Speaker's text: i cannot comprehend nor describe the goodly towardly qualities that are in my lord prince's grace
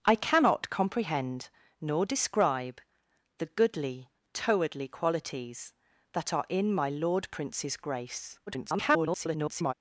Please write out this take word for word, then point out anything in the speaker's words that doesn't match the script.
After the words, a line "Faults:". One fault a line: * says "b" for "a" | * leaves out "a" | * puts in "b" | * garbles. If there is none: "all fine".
i cannot comprehend nor describe the goodly towardly qualities that are in my lord prince's grace [garbled]
Faults:
* garbles